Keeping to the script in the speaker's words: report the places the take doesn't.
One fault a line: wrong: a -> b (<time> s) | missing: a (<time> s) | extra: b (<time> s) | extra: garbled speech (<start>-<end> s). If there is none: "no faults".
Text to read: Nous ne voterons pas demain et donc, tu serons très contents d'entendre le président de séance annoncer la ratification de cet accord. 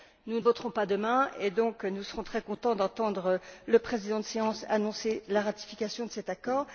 wrong: tu -> nous (1.8 s)